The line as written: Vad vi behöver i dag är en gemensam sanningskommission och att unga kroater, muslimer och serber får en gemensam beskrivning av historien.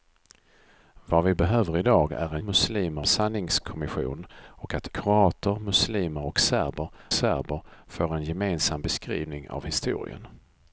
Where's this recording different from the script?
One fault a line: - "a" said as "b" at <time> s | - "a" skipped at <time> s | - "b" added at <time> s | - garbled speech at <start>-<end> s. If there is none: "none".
- "gemensam" said as "muslimer" at 2.4 s
- "unga" skipped at 4.9 s
- "serber" added at 7.1 s